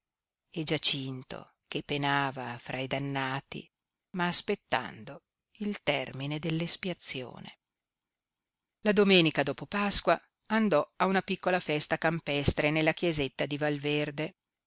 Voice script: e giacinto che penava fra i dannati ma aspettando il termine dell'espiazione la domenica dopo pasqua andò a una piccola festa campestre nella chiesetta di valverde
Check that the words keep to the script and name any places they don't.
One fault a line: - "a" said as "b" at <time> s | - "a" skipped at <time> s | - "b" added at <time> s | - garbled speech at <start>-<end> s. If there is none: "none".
none